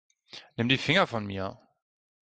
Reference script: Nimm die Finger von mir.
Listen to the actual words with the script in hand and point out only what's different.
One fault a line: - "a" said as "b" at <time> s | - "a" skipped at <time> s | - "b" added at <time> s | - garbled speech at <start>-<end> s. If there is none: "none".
none